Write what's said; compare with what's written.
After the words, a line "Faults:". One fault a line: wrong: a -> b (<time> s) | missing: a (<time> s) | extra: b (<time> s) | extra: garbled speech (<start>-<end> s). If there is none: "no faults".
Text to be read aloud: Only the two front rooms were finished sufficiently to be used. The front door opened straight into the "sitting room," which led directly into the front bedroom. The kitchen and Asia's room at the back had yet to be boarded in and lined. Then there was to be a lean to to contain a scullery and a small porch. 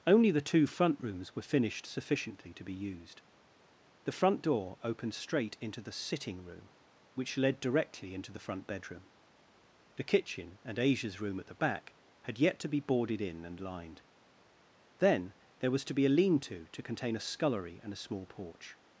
Only the two front rooms were finished sufficiently to be used. The front door opened straight into the "sitting room," which led directly into the front bedroom. The kitchen and Asia's room at the back had yet to be boarded in and lined. Then there was to be a lean to to contain a scullery and a small porch.
Faults:
no faults